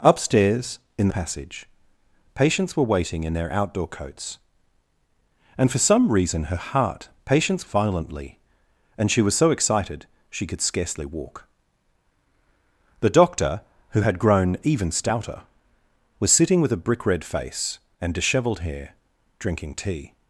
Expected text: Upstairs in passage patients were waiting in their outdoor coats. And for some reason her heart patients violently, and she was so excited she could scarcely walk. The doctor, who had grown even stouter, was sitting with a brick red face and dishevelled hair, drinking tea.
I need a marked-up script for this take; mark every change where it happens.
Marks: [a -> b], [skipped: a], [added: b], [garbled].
Upstairs in passage patients were waiting in their outdoor coats. And for some reason her heart patients violently, and she was so excited she could scarcely walk. The doctor, who had grown even stouter, was sitting with a brick red face and dishevelled hair, drinking tea.